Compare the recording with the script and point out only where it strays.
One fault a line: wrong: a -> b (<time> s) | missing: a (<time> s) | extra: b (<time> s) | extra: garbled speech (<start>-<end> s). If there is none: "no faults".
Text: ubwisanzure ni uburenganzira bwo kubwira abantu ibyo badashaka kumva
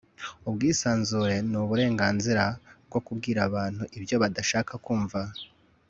no faults